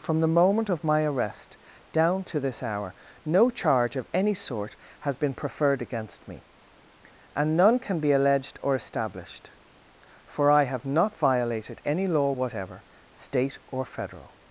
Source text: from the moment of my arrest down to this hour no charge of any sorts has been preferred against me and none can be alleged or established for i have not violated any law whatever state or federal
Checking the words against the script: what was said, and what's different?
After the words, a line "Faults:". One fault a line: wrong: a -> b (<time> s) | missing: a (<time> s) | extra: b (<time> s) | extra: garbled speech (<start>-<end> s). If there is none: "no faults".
from the moment of my arrest down to this hour no charge of any sort has been preferred against me and none can be alleged or established for i have not violated any law whatever state or federal
Faults:
wrong: sorts -> sort (4.3 s)